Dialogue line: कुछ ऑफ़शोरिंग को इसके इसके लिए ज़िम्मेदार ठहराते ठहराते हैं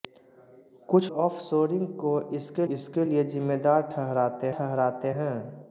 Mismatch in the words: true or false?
false